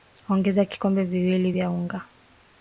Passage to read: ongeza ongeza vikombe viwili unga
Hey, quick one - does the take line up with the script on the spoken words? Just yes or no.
no